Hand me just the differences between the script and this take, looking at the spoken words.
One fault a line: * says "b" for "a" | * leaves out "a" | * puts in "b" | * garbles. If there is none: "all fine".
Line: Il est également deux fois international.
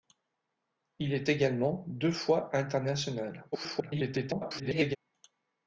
* garbles